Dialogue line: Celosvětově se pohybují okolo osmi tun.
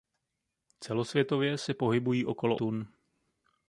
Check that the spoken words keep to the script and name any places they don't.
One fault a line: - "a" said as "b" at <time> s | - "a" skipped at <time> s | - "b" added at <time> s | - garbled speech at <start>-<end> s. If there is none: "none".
- "osmi" skipped at 2.6 s